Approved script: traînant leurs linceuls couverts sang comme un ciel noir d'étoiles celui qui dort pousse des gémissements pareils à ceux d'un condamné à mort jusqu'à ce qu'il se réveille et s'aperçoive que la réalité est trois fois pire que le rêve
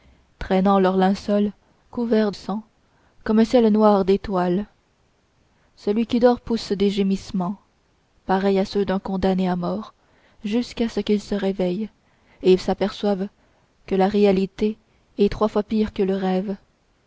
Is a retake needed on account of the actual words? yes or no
no